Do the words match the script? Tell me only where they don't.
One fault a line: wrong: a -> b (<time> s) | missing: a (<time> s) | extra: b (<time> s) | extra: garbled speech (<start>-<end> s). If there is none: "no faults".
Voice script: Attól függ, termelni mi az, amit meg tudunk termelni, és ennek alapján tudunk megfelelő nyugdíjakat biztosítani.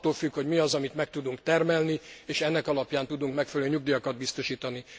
wrong: termelni -> hogy (0.3 s)